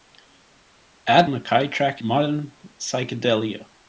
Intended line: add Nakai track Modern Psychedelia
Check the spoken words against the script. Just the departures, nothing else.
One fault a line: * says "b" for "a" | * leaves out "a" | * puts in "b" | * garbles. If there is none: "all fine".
all fine